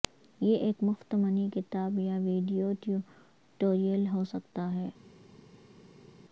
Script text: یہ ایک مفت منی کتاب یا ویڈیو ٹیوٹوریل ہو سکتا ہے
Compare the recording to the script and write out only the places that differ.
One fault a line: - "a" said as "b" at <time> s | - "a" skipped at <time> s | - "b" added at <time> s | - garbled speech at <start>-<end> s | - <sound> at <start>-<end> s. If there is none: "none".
none